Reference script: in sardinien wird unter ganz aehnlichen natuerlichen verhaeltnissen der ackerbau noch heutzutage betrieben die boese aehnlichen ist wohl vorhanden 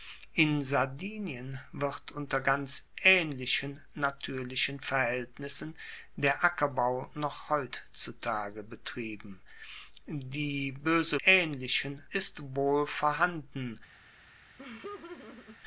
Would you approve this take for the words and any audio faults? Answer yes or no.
no